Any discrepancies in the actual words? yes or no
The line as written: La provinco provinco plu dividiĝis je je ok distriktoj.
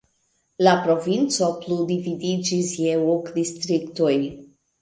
yes